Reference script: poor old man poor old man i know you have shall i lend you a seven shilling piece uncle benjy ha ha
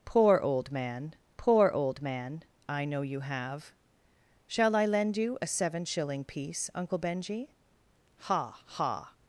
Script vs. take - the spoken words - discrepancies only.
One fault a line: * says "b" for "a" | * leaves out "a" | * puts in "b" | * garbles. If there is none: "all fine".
all fine